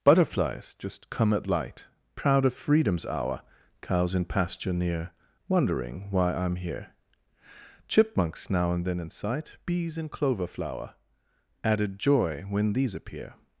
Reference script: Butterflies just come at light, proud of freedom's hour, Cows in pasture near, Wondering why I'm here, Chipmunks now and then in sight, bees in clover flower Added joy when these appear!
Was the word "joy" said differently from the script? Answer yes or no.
no